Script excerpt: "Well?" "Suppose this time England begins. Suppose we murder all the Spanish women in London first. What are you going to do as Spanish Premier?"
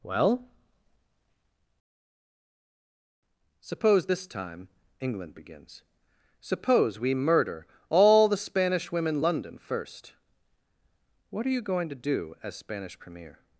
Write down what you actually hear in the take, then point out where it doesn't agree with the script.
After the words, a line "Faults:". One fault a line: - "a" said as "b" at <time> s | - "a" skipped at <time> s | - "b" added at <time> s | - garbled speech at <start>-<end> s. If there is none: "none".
"Well?" "Suppose this time England begins. Suppose we murder all the Spanish women London first. What are you going to do as Spanish Premier?"
Faults:
- "in" skipped at 9.2 s